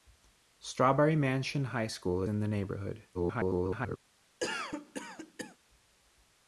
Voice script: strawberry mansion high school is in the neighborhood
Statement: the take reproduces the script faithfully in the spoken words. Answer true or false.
false